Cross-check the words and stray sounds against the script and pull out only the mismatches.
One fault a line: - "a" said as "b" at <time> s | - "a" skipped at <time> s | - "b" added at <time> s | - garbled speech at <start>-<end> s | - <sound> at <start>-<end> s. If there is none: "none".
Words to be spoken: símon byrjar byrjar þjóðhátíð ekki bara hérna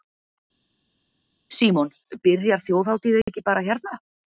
- "byrjar" skipped at 2.6 s